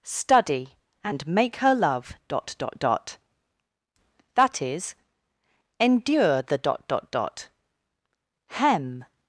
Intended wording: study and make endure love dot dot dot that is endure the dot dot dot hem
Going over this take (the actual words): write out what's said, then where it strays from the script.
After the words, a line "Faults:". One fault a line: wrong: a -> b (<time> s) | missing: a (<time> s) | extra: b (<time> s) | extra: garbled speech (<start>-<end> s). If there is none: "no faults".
study and make her love dot dot dot that is endure the dot dot dot hem
Faults:
wrong: endure -> her (1.6 s)